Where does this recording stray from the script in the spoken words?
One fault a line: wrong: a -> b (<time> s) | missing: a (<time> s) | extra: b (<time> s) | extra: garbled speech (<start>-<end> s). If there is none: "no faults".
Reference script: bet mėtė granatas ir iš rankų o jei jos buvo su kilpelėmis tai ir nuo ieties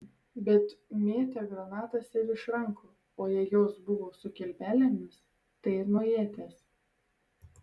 no faults